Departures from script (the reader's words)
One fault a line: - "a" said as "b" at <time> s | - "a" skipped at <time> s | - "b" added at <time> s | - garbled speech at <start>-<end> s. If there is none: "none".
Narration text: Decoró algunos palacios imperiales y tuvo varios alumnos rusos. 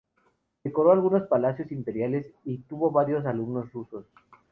none